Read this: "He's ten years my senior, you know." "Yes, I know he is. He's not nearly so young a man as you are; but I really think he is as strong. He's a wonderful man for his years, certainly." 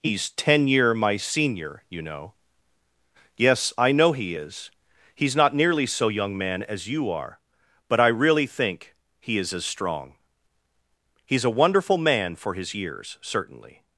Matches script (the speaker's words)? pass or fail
fail